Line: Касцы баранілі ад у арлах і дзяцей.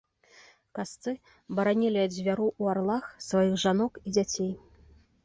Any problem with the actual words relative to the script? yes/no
yes